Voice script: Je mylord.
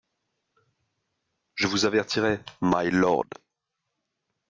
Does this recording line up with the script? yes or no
no